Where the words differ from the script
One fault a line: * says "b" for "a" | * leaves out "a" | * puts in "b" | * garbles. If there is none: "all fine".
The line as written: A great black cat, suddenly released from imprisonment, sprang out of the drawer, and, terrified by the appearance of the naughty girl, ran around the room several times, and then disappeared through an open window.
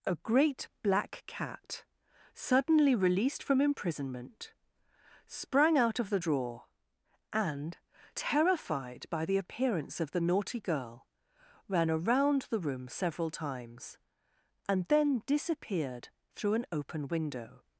all fine